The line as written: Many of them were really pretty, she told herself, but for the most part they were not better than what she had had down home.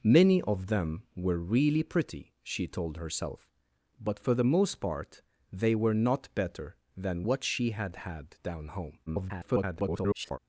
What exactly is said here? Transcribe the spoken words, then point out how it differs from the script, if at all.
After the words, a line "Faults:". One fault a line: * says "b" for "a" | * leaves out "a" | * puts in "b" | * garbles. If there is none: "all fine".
Many of them were really pretty, she told herself, but for the most part they were not better than what she had had down home. [garbled]
Faults:
* garbles